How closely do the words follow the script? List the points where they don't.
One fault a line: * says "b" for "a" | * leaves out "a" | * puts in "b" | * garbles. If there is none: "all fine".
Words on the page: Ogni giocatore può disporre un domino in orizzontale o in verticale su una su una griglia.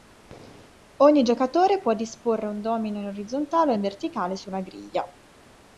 * leaves out "su una"